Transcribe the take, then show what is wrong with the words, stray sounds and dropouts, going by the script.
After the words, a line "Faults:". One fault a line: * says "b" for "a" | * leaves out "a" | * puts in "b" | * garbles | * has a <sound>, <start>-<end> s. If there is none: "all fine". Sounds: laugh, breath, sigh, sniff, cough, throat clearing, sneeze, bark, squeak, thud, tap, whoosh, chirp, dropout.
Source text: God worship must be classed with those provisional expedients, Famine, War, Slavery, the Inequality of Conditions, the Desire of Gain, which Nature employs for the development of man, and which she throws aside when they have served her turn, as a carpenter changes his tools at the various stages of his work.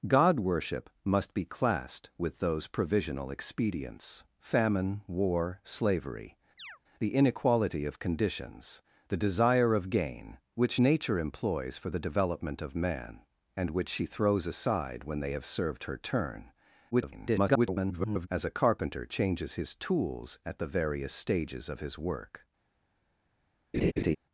God worship must be classed with those provisional expedients, Famine, War, Slavery, the Inequality of Conditions, the Desire of Gain, which Nature employs for the development of man, and which she throws aside when they have served her turn, [garbled] as a carpenter changes his tools at the various stages of his work.
Faults:
* has a chirp, 6.6-6.8 s
* garbles
* has a laugh, 23.7-24.2 s